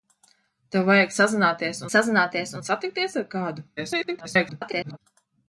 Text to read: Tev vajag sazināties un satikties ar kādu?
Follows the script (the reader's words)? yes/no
no